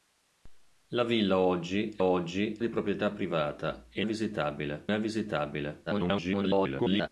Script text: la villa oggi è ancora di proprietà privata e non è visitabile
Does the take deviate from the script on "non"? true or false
true